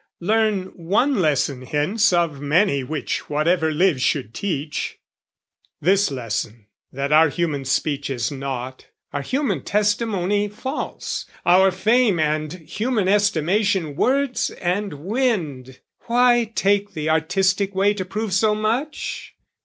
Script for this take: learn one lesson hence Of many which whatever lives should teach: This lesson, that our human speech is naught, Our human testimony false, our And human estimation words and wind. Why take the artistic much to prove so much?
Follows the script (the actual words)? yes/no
no